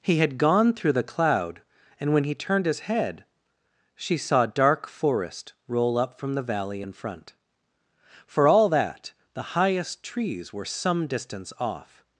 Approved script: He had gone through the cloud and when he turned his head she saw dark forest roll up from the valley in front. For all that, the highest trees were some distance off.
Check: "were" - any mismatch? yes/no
no